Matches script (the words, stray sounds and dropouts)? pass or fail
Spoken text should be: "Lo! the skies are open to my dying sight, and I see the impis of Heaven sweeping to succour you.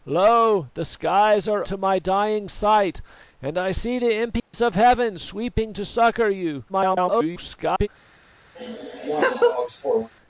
fail